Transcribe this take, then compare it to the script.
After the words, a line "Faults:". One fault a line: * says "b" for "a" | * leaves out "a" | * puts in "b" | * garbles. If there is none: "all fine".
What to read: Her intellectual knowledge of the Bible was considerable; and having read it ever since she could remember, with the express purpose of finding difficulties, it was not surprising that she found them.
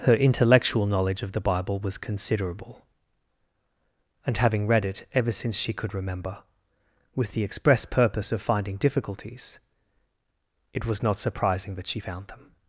Her intellectual knowledge of the Bible was considerable; and having read it ever since she could remember, with the express purpose of finding difficulties, it was not surprising that she found them.
Faults:
all fine